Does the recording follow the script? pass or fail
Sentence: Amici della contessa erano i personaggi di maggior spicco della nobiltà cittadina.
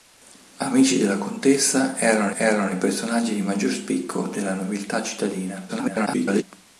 fail